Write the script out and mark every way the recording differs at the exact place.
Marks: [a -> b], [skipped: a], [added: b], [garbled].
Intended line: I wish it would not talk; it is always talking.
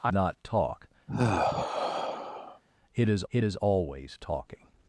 I [wish -> not talk] it [would not talk; -> is] it is always talking.